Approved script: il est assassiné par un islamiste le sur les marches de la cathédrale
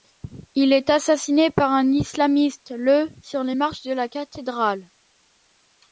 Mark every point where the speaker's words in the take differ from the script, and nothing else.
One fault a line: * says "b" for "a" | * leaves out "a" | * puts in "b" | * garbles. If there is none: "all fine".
all fine